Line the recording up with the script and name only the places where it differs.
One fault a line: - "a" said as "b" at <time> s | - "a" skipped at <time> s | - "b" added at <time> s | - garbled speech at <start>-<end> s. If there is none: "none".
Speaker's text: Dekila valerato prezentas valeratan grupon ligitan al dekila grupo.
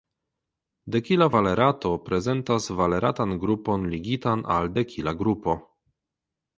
none